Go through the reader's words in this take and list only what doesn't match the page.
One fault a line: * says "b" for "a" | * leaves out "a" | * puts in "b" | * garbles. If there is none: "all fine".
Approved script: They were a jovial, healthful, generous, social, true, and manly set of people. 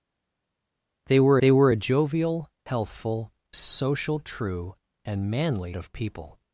* puts in "they were"
* leaves out "generous"
* leaves out "set"